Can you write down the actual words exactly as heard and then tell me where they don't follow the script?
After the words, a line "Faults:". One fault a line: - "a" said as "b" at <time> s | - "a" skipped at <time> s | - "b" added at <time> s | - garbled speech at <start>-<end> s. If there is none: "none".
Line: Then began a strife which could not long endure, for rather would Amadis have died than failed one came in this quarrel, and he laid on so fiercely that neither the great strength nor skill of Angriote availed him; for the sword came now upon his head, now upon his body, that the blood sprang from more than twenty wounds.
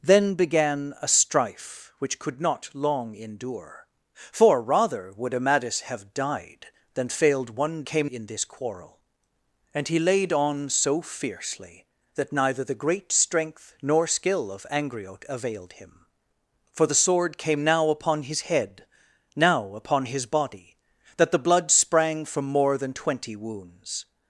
Then began a strife which could not long endure, for rather would Amadis have died than failed one came in this quarrel, and he laid on so fiercely that neither the great strength nor skill of Angriote availed him; for the sword came now upon his head, now upon his body, that the blood sprang from more than twenty wounds.
Faults:
none